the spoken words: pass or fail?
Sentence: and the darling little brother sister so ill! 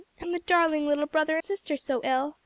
pass